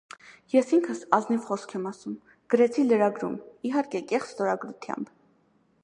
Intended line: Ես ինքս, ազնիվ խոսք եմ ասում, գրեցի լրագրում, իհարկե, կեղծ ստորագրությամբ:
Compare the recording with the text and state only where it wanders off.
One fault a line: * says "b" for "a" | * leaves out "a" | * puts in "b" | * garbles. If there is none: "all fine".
all fine